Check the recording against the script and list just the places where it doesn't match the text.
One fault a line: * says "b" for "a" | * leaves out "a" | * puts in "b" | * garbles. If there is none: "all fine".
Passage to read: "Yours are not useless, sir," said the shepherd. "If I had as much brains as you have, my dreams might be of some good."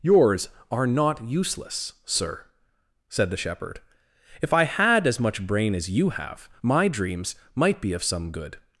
* says "brain" for "brains"